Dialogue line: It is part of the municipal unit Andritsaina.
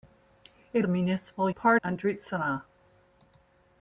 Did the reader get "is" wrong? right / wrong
wrong